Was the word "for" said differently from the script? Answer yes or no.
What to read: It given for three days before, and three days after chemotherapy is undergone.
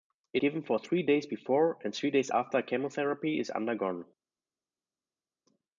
no